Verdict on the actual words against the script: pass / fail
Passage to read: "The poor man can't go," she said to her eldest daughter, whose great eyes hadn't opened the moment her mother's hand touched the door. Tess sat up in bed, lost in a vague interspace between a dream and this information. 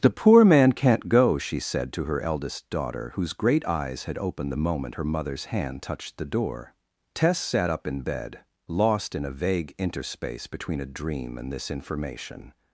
fail